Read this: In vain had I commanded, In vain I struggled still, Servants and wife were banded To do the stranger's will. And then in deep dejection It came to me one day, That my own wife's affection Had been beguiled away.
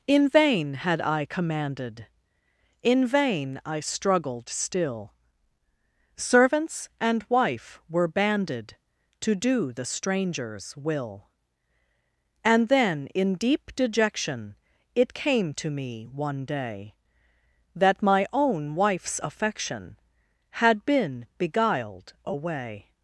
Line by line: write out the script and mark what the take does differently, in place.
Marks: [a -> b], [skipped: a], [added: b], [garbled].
In vain had I commanded, In vain I struggled still, Servants and wife were banded To do the stranger's will. And then in deep dejection It came to me one day, That my own wife's affection Had been beguiled away.